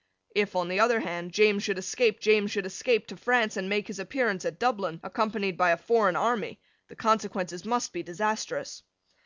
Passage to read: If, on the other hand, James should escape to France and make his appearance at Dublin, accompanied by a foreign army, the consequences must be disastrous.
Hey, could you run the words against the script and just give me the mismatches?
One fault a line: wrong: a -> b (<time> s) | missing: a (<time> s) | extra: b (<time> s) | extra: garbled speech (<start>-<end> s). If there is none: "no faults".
extra: James should escape (2.2 s)